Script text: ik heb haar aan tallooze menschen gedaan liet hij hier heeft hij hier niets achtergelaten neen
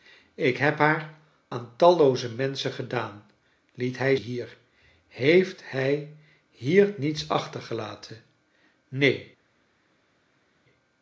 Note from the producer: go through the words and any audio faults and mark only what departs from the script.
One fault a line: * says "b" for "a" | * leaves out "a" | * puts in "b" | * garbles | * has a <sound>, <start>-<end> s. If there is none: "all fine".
all fine